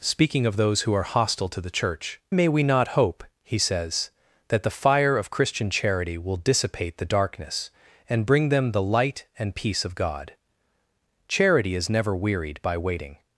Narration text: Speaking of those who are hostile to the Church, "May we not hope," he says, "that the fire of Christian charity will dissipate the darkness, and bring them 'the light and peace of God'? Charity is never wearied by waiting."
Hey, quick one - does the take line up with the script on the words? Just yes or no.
yes